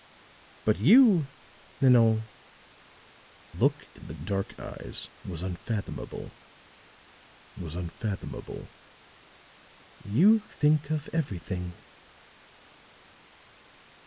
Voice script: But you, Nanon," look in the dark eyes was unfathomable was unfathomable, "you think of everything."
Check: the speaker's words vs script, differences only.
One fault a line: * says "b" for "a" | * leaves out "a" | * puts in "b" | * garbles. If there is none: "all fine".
all fine